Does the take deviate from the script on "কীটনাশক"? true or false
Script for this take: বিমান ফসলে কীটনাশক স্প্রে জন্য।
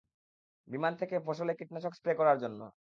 false